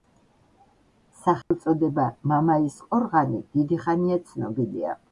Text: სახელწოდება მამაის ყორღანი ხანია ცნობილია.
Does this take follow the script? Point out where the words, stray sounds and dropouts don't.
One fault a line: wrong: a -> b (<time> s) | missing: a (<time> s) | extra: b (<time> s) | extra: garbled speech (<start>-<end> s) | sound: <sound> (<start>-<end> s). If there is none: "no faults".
sound: dropout (1.4-1.5 s)
extra: დიდი (3.5 s)